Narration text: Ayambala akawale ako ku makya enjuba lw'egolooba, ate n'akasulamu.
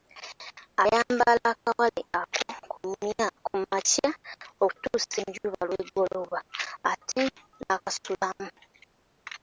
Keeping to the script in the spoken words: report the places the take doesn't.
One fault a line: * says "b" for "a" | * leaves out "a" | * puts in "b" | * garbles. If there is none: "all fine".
* puts in "okutuusa"